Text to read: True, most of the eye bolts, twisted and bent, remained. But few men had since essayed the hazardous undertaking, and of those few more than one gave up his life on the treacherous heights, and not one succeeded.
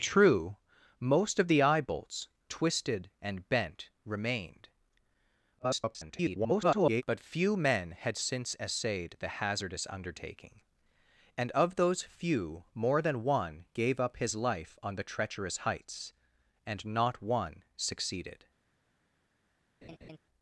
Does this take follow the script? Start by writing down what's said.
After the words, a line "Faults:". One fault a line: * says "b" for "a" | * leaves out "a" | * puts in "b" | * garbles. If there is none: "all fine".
True, most of the eye bolts, twisted and bent, remained. [garbled] But few men had since essayed the hazardous undertaking, and of those few more than one gave up his life on the treacherous heights, and not one succeeded.
Faults:
* garbles